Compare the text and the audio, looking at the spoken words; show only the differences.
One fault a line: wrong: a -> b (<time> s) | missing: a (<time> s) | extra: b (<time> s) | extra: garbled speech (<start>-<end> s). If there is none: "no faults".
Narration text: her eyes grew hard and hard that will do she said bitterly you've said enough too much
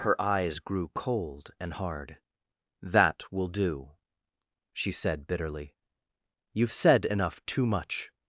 wrong: hard -> cold (0.9 s)